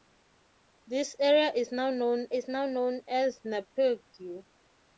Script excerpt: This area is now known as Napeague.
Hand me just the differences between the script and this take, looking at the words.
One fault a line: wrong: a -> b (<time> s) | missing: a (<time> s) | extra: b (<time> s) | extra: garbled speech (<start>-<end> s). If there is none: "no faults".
extra: is now known (2.3 s)